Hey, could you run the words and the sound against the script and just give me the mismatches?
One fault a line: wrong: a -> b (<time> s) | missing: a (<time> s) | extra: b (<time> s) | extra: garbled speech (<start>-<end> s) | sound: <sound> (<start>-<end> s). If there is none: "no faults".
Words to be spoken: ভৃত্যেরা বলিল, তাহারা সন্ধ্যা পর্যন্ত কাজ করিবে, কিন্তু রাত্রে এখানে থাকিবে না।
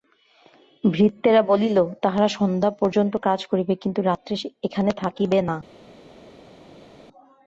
no faults